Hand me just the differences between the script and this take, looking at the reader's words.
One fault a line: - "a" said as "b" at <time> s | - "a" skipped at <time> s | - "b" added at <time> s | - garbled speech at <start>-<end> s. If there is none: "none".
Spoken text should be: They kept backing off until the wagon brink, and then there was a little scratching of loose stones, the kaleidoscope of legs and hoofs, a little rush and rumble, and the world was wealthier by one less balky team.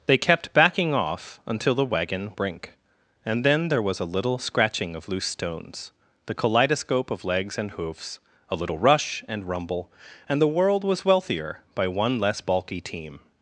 none